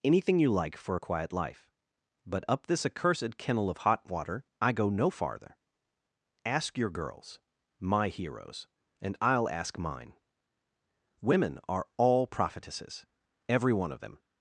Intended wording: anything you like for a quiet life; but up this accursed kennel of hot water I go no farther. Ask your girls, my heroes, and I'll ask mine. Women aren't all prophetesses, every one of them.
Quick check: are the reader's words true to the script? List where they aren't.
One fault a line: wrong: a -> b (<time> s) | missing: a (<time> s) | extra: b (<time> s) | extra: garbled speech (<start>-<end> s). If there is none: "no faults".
wrong: aren't -> are (11.7 s)